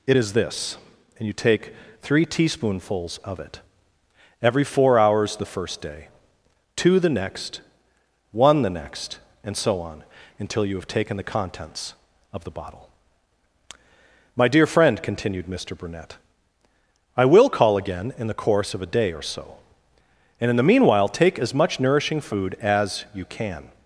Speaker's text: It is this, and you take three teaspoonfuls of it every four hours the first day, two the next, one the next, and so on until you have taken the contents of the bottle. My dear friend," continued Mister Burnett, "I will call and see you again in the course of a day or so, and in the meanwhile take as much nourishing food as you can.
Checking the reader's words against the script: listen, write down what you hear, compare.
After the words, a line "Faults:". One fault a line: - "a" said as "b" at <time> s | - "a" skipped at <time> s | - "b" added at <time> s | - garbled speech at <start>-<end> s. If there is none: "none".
It is this, and you take three teaspoonfuls of it every four hours the first day, two the next, one the next, and so on until you have taken the contents of the bottle. My dear friend," continued Mister Burnett, "I will call again in the course of a day or so, and in the meanwhile take as much nourishing food as you can.
Faults:
- "and see you" skipped at 17.7 s